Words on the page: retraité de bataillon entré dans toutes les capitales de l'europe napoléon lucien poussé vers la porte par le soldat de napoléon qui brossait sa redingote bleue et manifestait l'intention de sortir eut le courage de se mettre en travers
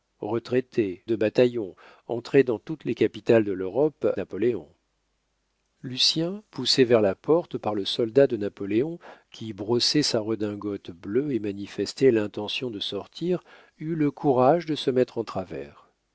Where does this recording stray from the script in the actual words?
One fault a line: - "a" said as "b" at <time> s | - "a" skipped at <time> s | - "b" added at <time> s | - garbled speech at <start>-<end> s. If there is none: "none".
none